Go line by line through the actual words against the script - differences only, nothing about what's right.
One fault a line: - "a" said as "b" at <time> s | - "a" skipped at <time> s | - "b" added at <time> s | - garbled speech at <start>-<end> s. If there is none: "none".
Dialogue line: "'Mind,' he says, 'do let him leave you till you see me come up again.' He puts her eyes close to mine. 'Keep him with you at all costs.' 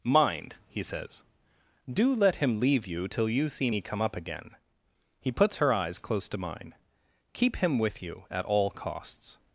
none